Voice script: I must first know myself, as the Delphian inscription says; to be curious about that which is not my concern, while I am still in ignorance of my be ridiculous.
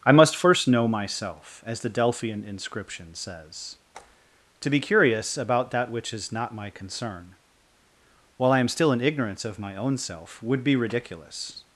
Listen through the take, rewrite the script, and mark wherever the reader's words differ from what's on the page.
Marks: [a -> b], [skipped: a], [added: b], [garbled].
I must first know myself, as the Delphian inscription says; to be curious about that which is not my concern, while I am still in ignorance of my [added: own self would] be ridiculous.